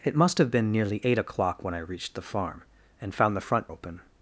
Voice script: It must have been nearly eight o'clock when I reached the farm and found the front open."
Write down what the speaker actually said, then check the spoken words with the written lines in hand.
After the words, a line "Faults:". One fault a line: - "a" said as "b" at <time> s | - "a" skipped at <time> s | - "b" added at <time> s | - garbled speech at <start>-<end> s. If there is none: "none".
It must have been nearly eight o'clock when I reached the farm and found the front open."
Faults:
none